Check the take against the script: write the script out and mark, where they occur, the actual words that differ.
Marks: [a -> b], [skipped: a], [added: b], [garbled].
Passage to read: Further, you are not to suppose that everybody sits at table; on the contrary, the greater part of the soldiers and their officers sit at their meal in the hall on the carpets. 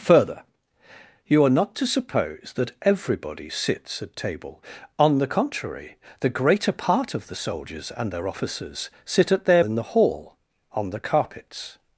Further, you are not to suppose that everybody sits at table; on the contrary, the greater part of the soldiers and their officers sit at their [skipped: meal] in the hall on the carpets.